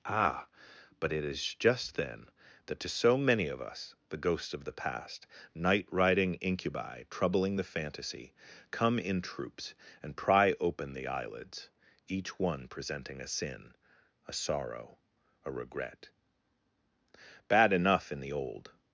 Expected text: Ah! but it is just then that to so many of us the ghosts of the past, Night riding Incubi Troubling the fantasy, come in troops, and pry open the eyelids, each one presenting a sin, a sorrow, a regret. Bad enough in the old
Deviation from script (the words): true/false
false